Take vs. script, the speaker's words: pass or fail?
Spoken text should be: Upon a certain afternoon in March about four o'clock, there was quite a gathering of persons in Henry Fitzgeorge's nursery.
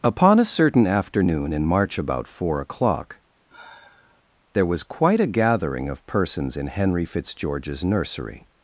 pass